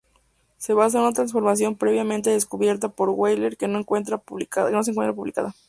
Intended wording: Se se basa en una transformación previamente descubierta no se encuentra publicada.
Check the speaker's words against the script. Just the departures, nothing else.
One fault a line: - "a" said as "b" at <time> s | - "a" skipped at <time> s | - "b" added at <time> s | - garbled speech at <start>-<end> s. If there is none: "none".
- "se" skipped at 0.7 s
- "por Wheeler que" added at 2.9 s